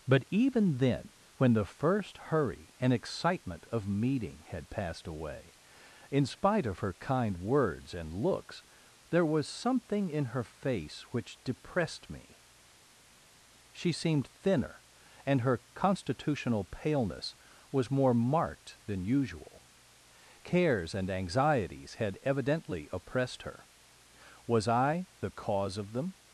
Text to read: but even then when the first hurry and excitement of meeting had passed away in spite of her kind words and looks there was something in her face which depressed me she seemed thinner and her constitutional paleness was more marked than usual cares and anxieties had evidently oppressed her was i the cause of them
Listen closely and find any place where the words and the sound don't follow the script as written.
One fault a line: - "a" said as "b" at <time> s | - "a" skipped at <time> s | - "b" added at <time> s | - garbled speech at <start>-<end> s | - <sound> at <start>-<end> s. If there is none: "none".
none